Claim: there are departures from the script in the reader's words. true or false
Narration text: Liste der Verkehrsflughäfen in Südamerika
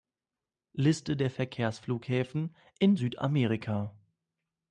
false